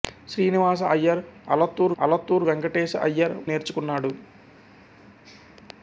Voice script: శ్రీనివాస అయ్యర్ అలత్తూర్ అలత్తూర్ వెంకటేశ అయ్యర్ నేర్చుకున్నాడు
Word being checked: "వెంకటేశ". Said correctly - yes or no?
yes